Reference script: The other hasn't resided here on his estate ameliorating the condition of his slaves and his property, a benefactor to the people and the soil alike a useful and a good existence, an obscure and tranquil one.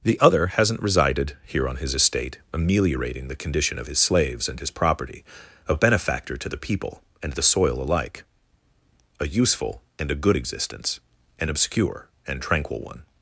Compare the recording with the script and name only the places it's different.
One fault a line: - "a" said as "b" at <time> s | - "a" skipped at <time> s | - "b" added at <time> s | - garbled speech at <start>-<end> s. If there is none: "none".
none